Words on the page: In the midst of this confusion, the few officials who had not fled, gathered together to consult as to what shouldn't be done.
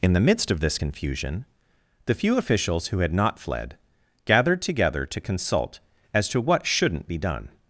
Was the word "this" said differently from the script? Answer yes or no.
no